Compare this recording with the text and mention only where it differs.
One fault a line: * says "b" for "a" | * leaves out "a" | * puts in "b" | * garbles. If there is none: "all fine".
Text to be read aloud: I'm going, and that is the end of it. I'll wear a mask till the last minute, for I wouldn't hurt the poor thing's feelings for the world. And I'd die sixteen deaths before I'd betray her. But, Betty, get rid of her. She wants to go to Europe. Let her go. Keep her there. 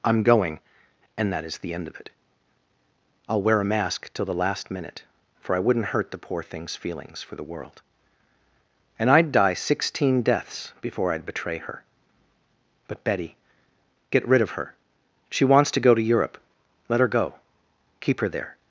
all fine